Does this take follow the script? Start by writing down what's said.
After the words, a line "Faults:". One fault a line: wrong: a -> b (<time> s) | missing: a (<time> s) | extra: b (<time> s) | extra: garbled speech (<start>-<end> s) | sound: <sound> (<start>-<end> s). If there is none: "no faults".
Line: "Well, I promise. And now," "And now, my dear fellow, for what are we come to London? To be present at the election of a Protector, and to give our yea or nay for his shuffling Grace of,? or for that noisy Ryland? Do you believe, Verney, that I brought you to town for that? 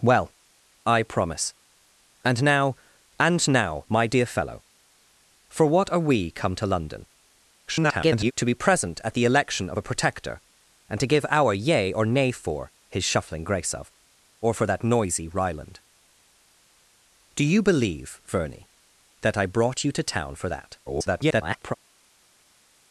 "Well, I promise. And now," "And now, my dear fellow, for what are we come to London? [garbled] To be present at the election of a Protector, and to give our yea or nay for his shuffling Grace of,? or for that noisy Ryland? Do you believe, Verney, that I brought you to town for that? [garbled]
Faults:
extra: garbled speech (7.7-8.3 s)
extra: garbled speech (20.9-21.7 s)